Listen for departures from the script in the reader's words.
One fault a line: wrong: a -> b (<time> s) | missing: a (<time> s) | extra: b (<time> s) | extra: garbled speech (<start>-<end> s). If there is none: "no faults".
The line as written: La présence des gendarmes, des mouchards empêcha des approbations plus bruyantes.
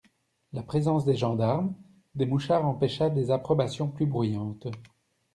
no faults